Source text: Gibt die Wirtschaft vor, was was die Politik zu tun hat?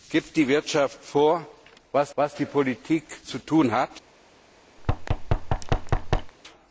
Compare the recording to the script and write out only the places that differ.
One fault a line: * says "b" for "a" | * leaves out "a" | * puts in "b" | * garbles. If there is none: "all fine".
all fine